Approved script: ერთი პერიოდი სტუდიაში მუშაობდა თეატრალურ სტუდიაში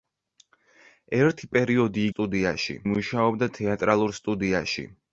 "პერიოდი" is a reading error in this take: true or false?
false